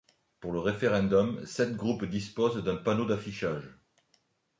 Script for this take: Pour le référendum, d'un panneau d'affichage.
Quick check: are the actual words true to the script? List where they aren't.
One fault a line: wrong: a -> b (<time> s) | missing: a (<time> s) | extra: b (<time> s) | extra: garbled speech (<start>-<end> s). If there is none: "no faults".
extra: sept groupes disposent (1.4 s)